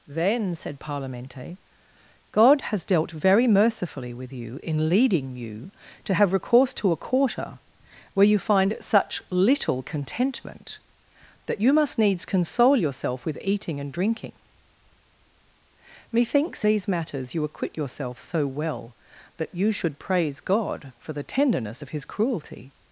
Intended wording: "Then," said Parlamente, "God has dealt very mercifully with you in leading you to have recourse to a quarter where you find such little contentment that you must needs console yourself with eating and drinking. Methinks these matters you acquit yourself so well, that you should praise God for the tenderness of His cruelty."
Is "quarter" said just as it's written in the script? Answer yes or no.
yes